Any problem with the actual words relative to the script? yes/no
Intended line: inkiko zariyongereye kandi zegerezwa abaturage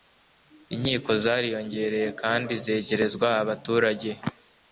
no